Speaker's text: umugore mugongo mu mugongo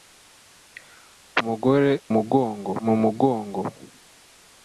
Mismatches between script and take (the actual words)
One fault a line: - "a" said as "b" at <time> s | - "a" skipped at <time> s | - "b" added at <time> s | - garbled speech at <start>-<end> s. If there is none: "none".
none